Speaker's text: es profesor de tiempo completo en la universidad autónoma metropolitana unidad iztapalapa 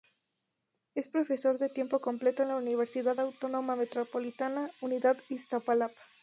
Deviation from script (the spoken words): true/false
false